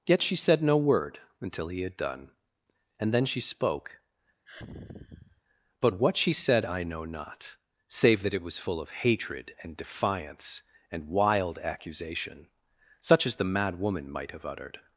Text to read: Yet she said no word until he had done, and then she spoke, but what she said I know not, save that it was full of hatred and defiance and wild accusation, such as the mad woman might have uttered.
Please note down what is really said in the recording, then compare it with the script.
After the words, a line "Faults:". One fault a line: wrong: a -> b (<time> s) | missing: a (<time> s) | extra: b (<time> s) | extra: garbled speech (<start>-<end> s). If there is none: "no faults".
Yet she said no word until he had done, and then she spoke, but what she said I know not, save that it was full of hatred and defiance and wild accusation, such as the mad woman might have uttered.
Faults:
no faults